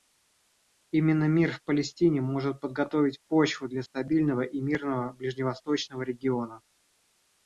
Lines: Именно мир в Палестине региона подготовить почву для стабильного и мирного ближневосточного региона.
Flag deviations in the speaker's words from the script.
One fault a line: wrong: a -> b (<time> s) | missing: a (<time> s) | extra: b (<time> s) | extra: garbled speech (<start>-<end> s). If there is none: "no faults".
wrong: региона -> может (2.2 s)